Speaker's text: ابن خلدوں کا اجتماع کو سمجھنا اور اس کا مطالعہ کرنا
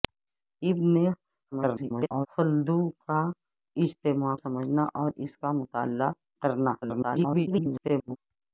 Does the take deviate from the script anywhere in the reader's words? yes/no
yes